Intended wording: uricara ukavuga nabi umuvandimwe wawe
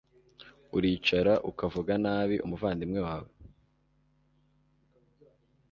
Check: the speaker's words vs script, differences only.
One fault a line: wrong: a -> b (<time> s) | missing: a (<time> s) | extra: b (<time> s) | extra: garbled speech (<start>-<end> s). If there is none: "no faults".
no faults